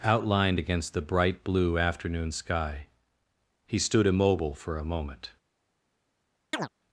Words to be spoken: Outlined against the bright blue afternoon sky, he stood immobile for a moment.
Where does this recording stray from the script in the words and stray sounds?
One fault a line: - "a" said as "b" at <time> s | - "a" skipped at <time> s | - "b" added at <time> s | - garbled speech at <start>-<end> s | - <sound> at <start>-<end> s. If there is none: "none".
- chirp at 6.5-6.7 s